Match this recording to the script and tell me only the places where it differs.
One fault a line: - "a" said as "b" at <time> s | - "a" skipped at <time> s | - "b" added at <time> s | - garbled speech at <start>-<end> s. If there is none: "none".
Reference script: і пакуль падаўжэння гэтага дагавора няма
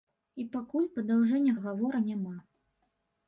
- "гэтага" skipped at 1.6 s